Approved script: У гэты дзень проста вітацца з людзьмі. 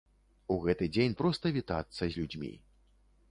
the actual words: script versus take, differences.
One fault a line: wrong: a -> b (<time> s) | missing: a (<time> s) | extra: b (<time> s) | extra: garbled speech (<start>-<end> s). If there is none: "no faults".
no faults